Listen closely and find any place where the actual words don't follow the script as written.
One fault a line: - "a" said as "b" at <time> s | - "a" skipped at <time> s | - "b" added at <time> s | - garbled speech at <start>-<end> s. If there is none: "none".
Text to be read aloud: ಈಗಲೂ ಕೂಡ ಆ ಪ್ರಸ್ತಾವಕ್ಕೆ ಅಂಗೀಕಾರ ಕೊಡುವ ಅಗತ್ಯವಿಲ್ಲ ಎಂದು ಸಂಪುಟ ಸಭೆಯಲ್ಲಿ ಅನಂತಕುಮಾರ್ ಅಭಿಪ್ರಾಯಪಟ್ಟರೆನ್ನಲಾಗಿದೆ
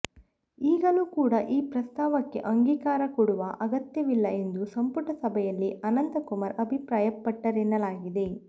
- "ಆ" said as "ಈ" at 1.5 s